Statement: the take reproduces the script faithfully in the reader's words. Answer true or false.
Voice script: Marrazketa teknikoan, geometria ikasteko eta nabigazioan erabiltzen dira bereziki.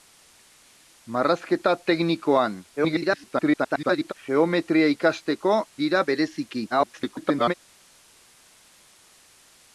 false